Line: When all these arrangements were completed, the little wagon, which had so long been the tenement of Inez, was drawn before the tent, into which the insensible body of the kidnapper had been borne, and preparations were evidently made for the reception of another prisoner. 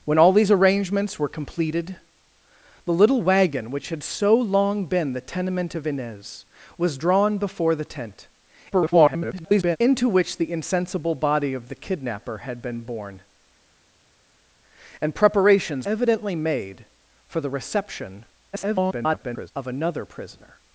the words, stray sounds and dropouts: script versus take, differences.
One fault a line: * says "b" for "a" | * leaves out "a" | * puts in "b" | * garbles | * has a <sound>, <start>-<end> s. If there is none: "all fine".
* garbles
* leaves out "were"
* garbles